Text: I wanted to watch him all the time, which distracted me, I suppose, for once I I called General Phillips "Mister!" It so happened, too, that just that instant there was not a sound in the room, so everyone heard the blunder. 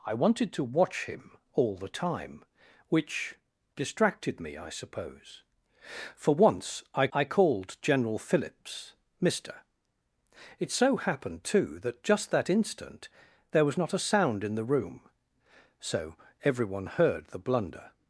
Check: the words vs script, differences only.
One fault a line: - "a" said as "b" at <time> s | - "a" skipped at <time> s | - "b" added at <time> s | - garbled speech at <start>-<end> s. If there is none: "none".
none